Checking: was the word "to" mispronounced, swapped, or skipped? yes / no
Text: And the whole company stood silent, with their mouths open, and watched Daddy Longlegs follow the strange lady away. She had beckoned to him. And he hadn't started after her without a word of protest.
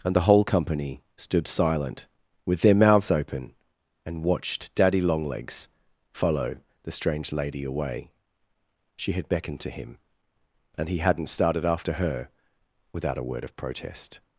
no